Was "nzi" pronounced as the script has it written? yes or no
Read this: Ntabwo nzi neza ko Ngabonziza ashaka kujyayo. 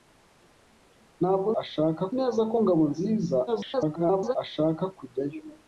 no